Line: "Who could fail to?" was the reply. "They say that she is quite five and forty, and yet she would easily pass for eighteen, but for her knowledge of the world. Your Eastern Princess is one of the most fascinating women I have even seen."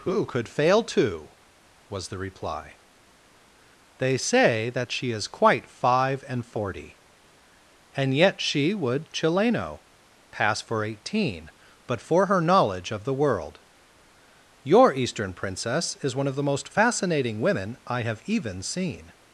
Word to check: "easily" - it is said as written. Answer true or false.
false